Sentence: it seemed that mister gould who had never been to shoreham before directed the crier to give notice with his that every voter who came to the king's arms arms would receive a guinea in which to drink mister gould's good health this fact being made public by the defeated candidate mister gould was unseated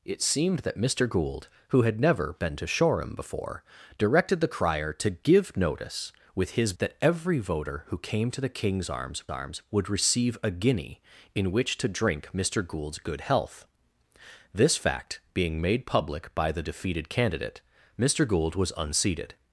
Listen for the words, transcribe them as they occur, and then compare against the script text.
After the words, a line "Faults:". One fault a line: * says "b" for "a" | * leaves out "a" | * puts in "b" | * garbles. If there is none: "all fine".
it seemed that mister gould who had never been to shoreham before directed the crier to give notice with his that every voter who came to the king's arms arms would receive a guinea in which to drink mister gould's good health this fact being made public by the defeated candidate mister gould was unseated
Faults:
all fine